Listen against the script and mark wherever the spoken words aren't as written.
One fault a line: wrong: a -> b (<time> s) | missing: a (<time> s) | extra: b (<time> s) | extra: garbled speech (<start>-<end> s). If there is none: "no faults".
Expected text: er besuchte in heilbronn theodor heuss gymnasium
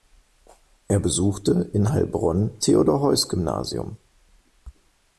no faults